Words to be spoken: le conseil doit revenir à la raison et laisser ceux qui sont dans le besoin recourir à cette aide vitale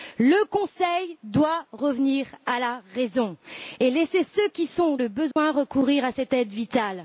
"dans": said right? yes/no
no